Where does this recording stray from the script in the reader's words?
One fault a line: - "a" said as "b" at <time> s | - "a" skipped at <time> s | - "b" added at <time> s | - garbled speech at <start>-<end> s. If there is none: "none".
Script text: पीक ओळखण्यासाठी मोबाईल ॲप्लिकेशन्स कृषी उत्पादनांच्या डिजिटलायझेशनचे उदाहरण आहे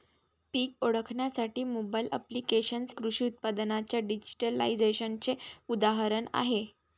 none